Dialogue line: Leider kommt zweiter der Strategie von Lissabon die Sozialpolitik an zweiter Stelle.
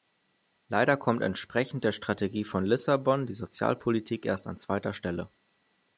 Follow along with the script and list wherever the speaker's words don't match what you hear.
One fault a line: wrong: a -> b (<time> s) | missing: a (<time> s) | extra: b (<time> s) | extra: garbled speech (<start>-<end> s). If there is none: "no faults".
wrong: zweiter -> entsprechend (1.2 s)
extra: erst (4.2 s)